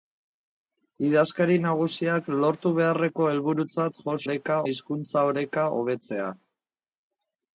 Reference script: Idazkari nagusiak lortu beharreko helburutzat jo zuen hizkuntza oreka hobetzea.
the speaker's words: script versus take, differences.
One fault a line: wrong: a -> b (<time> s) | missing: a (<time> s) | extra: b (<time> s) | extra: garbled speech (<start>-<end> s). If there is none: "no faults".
wrong: zuen -> oreka (4.3 s)